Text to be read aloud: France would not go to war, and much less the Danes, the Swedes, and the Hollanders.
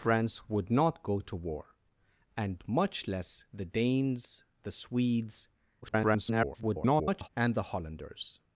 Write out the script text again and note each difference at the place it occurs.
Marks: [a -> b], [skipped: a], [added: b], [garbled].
France would not go to war, and much less the Danes, the Swedes, [garbled] and the Hollanders.